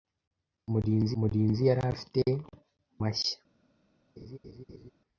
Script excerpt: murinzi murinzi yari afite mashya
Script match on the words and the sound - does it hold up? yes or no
no